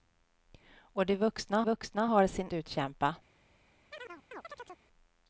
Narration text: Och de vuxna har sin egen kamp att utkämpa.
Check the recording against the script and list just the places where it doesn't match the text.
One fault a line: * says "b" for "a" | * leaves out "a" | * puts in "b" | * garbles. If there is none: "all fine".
* puts in "vuxna"
* leaves out "egen kamp att"